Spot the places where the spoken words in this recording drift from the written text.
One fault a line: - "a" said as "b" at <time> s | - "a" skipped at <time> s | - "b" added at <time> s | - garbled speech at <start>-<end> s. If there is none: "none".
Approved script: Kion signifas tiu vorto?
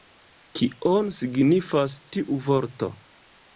none